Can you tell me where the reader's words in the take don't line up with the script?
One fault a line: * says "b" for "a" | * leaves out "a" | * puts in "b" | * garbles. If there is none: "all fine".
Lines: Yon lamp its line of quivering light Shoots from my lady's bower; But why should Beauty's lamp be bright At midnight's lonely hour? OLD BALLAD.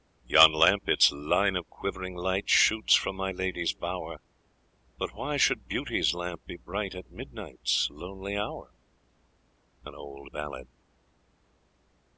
all fine